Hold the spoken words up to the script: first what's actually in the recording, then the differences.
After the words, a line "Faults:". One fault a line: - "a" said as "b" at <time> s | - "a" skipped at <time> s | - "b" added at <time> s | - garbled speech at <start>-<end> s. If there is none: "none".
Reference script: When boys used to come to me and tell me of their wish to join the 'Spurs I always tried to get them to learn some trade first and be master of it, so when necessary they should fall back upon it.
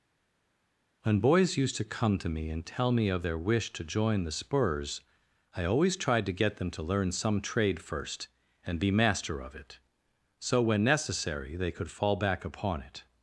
When boys used to come to me and tell me of their wish to join the 'Spurs I always tried to get them to learn some trade first and be master of it, so when necessary they could fall back upon it.
Faults:
- "should" said as "could" at 11.7 s